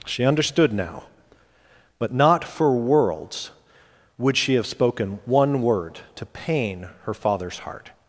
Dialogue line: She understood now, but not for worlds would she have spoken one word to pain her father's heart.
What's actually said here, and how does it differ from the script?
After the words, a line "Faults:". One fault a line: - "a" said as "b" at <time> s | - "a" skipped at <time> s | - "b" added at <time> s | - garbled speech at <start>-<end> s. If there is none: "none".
She understood now, but not for worlds would she have spoken one word to pain her father's heart.
Faults:
none